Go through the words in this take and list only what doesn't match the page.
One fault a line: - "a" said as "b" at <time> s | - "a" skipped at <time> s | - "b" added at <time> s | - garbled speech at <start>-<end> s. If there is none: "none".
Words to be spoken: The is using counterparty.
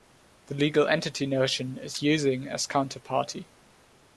- "legal entity notion" added at 0.6 s
- "as" added at 2.5 s